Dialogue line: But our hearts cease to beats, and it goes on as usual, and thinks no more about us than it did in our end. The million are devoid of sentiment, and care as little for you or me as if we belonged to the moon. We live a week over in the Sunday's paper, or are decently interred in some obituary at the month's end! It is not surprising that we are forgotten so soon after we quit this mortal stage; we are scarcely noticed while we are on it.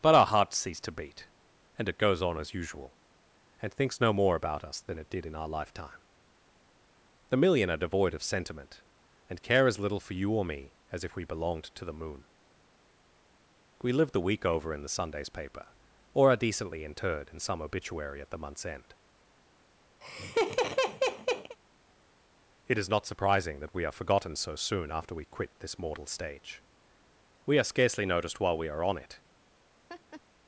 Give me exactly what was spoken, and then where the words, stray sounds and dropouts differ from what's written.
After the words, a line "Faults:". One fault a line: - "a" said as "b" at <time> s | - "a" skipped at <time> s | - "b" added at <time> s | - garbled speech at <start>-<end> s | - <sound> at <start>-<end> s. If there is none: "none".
But our hearts cease to beat, and it goes on as usual, and thinks no more about us than it did in our lifetime. The million are devoid of sentiment, and care as little for you or me as if we belonged to the moon. We live the week over in the Sunday's paper, or are decently interred in some obituary at the month's end! It is not surprising that we are forgotten so soon after we quit this mortal stage; we are scarcely noticed while we are on it.
Faults:
- "beats" said as "beat" at 0.9 s
- "end" said as "lifetime" at 5.5 s
- "a" said as "the" at 14.1 s
- laugh at 20.0-21.6 s
- laugh at 29.9-30.2 s